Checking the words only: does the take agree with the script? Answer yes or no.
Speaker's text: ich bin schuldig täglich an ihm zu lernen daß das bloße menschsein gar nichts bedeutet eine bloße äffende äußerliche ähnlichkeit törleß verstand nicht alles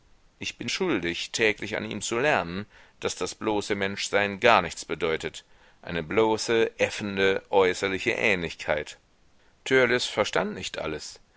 yes